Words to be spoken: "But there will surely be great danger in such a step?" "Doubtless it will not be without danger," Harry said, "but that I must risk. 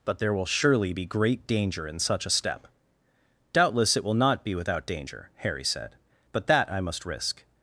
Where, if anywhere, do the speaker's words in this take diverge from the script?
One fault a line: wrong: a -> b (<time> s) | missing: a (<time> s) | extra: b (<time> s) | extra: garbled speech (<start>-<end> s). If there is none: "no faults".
no faults